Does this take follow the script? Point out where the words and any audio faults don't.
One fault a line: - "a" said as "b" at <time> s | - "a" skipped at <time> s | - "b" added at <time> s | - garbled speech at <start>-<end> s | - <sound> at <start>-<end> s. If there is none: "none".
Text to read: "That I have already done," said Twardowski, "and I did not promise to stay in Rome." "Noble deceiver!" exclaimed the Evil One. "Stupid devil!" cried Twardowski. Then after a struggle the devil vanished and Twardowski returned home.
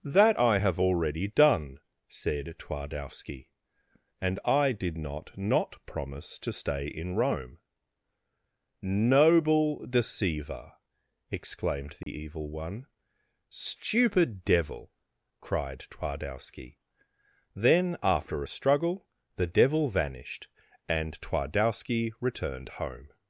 - "not" added at 5.4 s
- dropout at 12.0-12.1 s